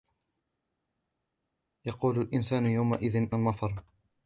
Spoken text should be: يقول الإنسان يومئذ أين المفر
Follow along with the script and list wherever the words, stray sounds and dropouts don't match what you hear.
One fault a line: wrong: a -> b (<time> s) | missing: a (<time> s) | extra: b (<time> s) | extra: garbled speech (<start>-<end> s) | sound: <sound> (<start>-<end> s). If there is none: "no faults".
missing: أين (3.3 s)